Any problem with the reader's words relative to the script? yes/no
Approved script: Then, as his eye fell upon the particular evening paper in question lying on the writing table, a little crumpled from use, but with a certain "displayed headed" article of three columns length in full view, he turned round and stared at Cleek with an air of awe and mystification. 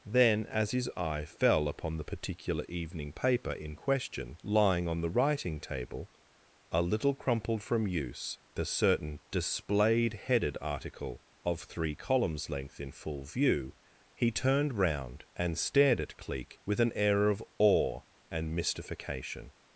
yes